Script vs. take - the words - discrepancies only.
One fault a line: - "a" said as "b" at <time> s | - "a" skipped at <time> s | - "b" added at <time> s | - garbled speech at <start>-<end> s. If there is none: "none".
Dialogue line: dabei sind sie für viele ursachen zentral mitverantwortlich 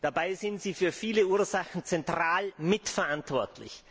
none